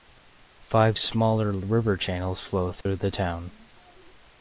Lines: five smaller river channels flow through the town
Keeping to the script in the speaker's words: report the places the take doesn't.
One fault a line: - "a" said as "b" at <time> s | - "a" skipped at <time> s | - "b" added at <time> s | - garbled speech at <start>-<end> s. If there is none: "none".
none